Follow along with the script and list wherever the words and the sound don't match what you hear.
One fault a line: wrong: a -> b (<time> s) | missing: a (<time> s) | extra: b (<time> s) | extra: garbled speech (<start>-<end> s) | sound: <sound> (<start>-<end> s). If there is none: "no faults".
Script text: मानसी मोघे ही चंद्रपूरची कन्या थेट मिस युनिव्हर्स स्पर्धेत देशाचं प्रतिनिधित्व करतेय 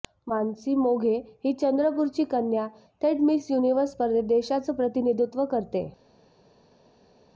no faults